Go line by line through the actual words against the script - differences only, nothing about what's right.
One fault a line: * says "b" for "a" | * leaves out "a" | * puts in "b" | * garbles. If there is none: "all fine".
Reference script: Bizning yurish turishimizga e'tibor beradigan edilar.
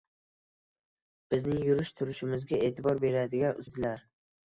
all fine